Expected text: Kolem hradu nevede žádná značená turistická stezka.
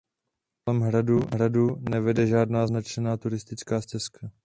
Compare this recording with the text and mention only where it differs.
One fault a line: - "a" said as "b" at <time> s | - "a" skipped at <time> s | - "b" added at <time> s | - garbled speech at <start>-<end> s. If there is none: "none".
none